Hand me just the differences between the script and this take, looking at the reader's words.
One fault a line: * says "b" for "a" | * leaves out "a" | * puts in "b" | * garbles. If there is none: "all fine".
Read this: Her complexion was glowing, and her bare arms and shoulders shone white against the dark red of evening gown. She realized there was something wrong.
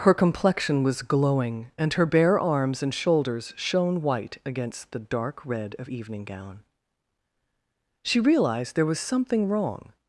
all fine